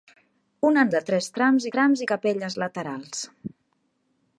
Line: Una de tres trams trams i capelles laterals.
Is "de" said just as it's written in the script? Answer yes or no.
yes